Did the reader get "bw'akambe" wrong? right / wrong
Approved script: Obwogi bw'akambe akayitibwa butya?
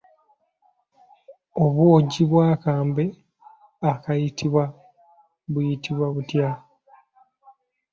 right